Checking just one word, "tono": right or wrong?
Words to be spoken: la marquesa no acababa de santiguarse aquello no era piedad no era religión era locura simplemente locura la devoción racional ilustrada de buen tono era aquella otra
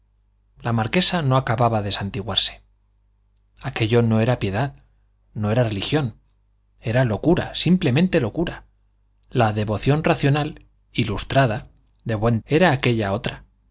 wrong